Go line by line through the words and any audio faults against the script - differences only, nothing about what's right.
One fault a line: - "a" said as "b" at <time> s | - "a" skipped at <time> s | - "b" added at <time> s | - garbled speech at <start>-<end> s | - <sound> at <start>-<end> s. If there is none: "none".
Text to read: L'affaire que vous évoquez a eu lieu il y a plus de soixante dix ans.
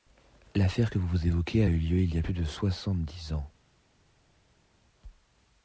none